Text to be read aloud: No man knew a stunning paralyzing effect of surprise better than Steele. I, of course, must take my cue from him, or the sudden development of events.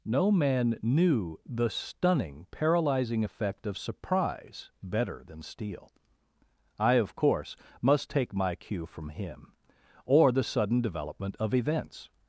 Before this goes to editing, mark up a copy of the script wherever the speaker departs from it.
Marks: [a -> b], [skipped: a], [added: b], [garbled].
No man knew [a -> the] stunning paralyzing effect of surprise better than Steele. I, of course, must take my cue from him, or the sudden development of events.